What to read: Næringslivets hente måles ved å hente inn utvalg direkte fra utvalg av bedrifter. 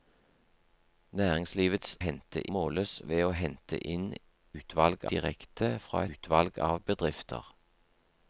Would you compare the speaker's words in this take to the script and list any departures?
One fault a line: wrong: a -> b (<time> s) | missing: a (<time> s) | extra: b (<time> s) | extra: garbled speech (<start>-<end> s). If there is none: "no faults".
no faults